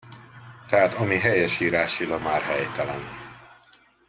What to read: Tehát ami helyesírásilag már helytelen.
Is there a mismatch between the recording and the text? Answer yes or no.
no